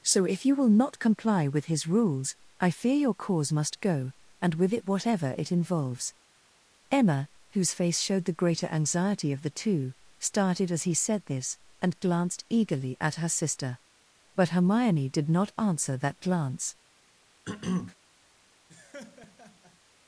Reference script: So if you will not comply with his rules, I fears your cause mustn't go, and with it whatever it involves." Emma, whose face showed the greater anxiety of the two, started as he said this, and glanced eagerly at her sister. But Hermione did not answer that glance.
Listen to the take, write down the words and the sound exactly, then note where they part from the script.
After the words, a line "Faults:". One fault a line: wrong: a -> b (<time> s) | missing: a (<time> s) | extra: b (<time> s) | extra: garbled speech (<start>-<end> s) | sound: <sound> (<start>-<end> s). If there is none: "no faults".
So if you will not comply with his rules, I fear your cause must go, and with it whatever it involves." Emma, whose face showed the greater anxiety of the two, started as he said this, and glanced eagerly at her sister. But Hermione did not answer that glance.
Faults:
wrong: fears -> fear (2.7 s)
wrong: mustn't -> must (3.5 s)
sound: throat clearing (17.5-18.0 s)
sound: laugh (18.7-19.8 s)